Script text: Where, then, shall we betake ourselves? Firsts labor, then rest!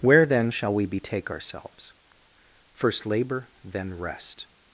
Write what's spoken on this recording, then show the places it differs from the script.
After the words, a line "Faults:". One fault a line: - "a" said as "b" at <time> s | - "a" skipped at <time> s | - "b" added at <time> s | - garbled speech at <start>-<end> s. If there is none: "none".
Where, then, shall we betake ourselves? First labor, then rest!
Faults:
- "Firsts" said as "First" at 2.7 s